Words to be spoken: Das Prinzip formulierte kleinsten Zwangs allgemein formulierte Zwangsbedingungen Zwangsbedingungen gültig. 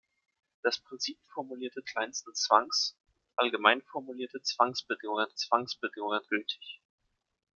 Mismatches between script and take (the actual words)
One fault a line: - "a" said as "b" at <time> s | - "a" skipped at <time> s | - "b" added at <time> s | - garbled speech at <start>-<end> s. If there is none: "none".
none